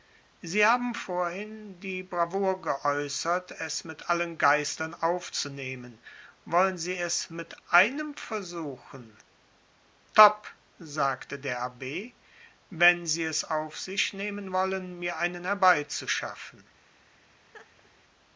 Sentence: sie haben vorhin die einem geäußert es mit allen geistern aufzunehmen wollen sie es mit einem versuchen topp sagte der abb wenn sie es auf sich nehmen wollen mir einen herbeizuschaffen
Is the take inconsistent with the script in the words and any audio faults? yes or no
yes